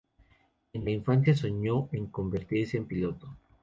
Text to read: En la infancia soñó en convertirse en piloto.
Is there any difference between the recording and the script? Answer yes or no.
no